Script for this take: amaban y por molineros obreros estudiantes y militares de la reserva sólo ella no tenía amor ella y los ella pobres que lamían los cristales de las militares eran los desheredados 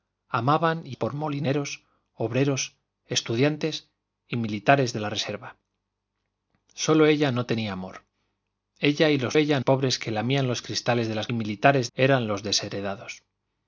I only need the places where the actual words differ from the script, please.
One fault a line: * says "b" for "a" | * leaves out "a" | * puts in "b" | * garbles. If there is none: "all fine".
all fine